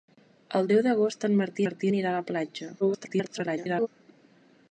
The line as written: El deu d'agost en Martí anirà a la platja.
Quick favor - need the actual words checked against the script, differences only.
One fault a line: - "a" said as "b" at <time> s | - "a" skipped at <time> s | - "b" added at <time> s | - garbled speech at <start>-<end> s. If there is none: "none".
- "Martí" added at 1.6 s
- garbled speech at 2.8-3.9 s